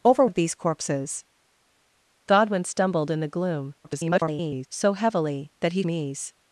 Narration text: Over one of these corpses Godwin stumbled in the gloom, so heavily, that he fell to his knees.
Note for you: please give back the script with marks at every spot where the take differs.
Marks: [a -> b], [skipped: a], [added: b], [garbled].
Over [skipped: one] of these corpses Godwin stumbled in the gloom, [garbled] so heavily, that he [skipped: fell to his] knees.